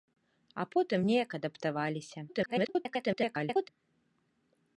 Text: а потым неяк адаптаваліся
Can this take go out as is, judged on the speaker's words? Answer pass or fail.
fail